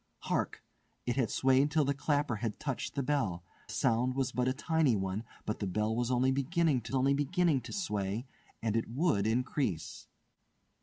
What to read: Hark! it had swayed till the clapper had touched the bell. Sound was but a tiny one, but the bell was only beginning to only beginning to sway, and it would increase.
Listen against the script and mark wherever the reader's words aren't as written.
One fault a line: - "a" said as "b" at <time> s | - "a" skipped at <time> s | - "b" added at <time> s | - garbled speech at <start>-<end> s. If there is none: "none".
none